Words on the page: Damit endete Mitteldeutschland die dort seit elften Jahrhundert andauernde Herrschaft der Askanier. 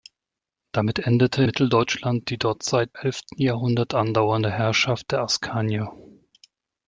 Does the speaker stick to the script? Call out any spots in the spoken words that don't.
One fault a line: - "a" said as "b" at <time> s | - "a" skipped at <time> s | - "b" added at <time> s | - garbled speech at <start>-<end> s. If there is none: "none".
none